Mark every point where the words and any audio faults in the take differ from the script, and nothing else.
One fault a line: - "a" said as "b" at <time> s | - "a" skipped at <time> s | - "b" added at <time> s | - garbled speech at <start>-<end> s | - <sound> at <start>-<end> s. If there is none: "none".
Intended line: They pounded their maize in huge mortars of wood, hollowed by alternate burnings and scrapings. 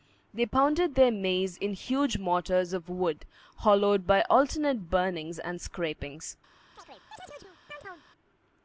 - chirp at 6.8-8.0 s